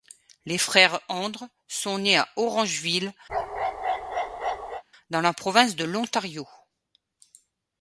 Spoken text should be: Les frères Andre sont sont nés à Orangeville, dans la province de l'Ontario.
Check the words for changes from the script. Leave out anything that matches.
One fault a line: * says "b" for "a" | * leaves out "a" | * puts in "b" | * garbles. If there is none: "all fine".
* leaves out "sont"